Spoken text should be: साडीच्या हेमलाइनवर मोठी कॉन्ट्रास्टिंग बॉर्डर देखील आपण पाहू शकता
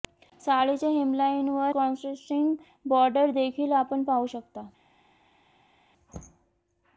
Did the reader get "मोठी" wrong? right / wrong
wrong